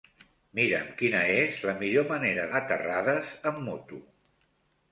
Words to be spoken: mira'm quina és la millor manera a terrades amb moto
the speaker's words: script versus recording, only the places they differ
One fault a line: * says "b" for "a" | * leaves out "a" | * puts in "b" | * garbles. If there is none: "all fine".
all fine